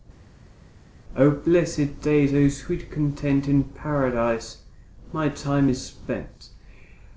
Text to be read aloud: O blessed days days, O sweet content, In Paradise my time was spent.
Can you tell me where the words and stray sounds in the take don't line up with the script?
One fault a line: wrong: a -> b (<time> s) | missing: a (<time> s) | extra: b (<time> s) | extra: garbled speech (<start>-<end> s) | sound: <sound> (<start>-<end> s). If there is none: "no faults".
missing: days (2.3 s)
wrong: was -> is (5.7 s)